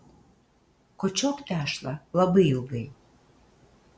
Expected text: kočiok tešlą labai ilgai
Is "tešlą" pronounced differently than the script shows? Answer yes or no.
no